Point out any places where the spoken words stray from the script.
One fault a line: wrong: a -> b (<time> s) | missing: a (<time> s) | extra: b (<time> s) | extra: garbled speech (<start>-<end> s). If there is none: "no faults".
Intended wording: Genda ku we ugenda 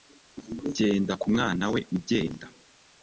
extra: mwana (1.3 s)